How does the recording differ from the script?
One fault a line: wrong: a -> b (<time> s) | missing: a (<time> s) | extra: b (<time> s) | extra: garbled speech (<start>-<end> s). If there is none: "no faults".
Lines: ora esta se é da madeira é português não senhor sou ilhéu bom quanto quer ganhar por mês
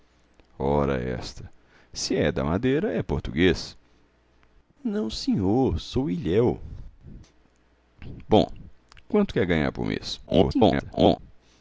extra: garbled speech (10.3-11.2 s)